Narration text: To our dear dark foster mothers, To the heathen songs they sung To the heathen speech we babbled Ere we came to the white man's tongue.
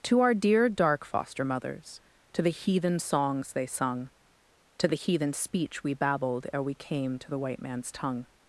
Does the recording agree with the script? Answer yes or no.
yes